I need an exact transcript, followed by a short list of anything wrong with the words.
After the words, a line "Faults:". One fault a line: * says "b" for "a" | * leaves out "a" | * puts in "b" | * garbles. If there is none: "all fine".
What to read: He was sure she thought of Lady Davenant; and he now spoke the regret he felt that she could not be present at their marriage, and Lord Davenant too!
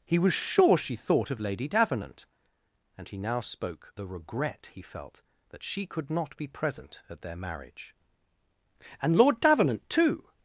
He was sure she thought of Lady Davenant; and he now spoke the regret he felt that she could not be present at their marriage, and Lord Davenant too!
Faults:
all fine